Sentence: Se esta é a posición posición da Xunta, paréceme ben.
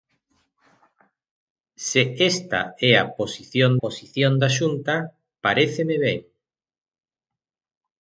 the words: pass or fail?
pass